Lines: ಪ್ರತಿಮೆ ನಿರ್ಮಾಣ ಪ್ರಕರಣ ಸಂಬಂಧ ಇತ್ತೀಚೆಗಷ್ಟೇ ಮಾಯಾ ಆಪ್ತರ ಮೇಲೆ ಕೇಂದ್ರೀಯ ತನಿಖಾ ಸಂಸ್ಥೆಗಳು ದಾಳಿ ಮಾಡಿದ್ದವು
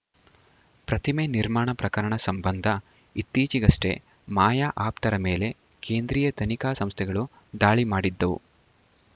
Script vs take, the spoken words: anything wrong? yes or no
no